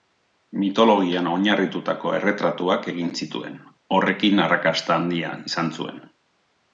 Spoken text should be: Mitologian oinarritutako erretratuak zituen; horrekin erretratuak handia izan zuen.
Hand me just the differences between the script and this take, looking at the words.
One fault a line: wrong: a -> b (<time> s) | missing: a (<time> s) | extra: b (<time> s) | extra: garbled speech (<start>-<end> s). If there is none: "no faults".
extra: egin (2.9 s)
wrong: erretratuak -> arrakasta (4.5 s)